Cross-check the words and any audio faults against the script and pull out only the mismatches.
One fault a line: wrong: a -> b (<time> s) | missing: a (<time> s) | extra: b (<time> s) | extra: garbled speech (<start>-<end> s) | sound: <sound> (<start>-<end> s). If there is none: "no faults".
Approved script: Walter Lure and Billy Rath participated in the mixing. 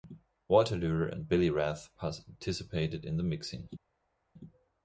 no faults